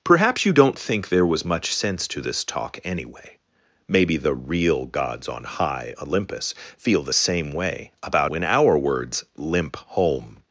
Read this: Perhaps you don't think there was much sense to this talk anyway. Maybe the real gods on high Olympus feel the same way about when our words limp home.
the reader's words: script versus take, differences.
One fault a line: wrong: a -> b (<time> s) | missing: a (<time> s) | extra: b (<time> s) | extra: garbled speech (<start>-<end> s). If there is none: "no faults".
no faults